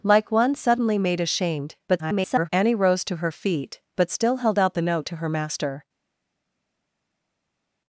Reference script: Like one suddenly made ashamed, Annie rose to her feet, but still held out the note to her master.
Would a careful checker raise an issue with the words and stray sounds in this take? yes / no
yes